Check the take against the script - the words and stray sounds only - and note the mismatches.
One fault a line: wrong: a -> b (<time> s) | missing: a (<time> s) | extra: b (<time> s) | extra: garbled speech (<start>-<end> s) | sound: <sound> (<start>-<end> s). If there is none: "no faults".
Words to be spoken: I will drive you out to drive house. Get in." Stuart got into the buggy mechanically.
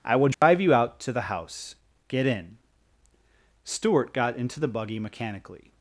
sound: dropout (0.3-0.4 s)
wrong: drive -> the (1.1 s)